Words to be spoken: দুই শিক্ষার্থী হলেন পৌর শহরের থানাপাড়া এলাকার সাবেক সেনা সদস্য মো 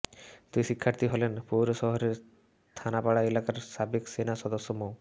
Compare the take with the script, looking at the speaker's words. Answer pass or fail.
pass